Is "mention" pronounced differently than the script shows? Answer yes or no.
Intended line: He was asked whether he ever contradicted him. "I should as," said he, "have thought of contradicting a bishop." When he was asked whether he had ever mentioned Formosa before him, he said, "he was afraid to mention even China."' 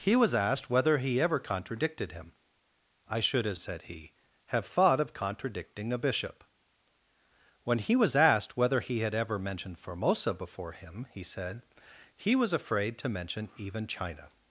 no